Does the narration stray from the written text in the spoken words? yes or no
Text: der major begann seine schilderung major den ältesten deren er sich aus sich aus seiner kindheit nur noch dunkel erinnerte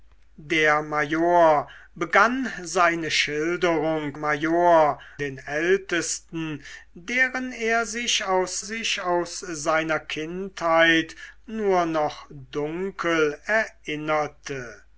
no